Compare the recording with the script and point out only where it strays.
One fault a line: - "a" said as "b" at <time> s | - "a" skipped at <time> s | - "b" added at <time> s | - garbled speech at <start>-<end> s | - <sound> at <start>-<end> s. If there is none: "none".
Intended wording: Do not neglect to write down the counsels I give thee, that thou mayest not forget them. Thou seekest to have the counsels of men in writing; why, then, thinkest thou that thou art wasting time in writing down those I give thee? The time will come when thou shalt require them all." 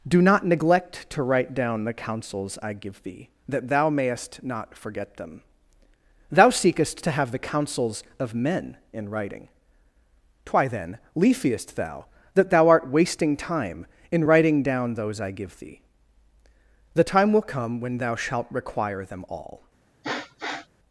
- "thinkest" said as "leafiest" at 11.2 s
- sniff at 20.0-20.7 s